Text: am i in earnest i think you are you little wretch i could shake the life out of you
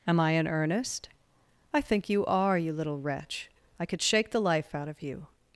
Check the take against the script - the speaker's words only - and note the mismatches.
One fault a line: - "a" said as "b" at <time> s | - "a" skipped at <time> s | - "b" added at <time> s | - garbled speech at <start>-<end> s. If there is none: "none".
none